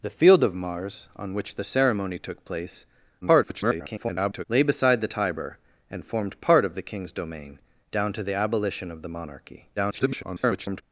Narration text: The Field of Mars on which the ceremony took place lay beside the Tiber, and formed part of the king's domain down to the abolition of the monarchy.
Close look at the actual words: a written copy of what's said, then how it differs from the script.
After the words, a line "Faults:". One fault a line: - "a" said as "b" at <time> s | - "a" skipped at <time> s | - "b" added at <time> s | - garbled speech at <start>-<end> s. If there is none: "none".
The Field of Mars on which the ceremony took place [garbled] lay beside the Tiber, and formed part of the king's domain down to the abolition of the monarchy. [garbled]
Faults:
- garbled speech at 3.2-4.5 s
- garbled speech at 9.8-10.8 s